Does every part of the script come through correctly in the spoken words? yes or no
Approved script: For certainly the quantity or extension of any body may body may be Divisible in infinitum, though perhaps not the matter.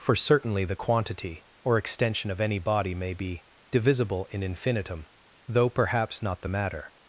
no